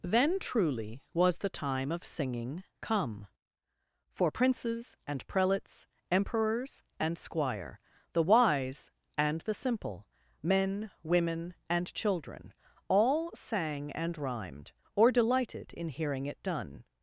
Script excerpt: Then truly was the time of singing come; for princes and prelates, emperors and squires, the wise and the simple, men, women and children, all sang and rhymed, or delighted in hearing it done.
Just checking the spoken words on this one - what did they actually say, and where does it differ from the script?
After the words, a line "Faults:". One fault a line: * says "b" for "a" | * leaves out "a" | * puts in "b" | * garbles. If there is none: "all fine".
Then truly was the time of singing come; for princes and prelates, emperors and squire, the wise and the simple, men, women and children, all sang and rhymed, or delighted in hearing it done.
Faults:
* says "squire" for "squires"